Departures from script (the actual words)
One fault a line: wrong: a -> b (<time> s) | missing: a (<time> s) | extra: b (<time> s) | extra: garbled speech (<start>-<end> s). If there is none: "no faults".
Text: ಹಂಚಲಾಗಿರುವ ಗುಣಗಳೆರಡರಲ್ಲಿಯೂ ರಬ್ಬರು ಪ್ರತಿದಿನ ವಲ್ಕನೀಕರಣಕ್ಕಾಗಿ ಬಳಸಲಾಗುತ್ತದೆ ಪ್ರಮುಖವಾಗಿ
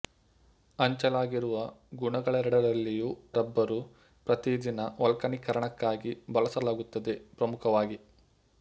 no faults